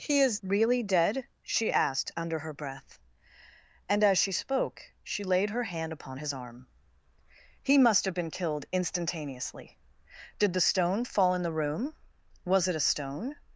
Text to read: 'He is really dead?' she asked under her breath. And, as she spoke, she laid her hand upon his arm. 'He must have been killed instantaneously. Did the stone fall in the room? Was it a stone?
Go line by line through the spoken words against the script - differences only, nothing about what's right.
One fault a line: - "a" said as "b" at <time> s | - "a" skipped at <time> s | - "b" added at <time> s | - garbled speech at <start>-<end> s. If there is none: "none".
none